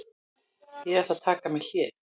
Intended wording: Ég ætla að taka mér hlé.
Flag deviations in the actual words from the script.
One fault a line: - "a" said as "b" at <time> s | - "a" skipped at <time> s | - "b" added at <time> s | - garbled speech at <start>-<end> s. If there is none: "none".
none